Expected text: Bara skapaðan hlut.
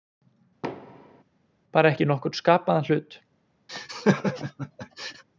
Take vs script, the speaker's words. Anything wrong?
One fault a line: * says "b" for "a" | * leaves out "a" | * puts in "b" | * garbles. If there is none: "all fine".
* puts in "ekki nokkurn"